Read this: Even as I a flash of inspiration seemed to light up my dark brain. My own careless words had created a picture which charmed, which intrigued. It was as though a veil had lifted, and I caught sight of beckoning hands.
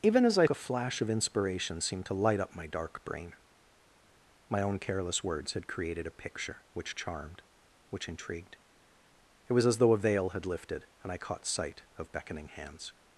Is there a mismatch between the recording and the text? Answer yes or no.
no